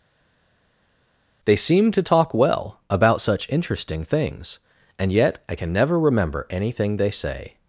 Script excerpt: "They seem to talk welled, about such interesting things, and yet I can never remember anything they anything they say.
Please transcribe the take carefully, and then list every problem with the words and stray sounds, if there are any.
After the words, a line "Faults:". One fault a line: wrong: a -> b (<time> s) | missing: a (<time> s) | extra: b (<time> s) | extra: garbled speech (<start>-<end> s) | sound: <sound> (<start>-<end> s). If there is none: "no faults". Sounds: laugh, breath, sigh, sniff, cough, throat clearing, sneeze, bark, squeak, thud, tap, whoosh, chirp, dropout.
"They seem to talk well, about such interesting things, and yet I can never remember anything they say.
Faults:
wrong: welled -> well (2.3 s)
missing: anything they (7.1 s)